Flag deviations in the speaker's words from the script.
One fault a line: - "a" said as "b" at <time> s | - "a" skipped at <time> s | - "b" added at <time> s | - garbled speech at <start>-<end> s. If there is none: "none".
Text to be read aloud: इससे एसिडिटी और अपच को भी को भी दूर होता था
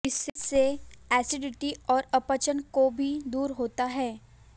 - "को भी" skipped at 3.1 s
- "था" said as "है" at 3.8 s